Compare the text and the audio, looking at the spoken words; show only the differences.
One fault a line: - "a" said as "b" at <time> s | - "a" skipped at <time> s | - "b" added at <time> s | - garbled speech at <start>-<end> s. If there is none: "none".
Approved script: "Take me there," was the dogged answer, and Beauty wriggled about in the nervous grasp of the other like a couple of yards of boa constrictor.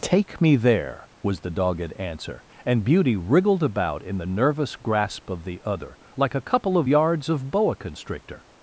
none